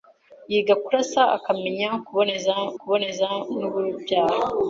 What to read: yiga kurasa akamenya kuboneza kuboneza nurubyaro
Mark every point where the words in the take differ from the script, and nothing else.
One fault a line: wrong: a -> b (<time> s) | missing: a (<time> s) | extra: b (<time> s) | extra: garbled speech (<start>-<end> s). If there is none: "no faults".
no faults